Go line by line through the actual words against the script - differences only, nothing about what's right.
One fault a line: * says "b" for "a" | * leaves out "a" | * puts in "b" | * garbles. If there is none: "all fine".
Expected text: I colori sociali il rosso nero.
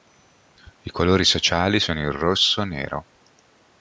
* puts in "sono"